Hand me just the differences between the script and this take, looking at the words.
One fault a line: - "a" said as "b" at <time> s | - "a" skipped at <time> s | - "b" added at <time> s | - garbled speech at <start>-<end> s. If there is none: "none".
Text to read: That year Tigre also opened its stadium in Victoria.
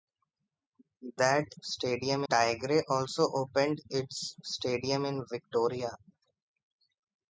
- "year" said as "stadium" at 1.6 s